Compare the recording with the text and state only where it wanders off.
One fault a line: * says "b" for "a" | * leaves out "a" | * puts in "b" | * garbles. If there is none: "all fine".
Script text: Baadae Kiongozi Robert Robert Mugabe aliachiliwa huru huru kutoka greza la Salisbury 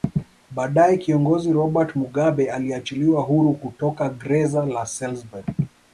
* leaves out "Robert"
* leaves out "huru"